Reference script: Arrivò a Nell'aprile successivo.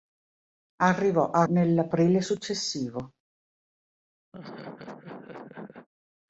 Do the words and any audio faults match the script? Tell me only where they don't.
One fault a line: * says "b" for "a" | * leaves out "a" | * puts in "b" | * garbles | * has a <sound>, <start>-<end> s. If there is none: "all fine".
* has a laugh, 4.3-5.9 s